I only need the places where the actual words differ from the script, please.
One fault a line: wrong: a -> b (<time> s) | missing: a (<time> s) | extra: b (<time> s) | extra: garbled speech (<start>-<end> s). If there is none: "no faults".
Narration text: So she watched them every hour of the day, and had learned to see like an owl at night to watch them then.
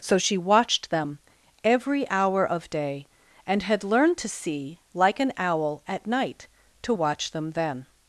missing: the (2.7 s)